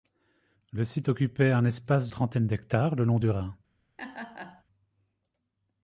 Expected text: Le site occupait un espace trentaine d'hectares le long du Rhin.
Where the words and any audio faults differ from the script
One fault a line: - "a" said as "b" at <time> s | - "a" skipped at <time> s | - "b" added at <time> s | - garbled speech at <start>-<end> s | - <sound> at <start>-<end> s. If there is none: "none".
- laugh at 4.0-4.6 s